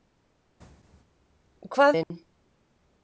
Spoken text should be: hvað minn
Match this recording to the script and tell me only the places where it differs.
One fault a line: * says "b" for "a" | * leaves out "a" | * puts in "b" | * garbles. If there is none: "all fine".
all fine